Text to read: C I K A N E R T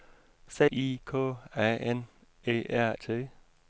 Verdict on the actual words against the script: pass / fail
pass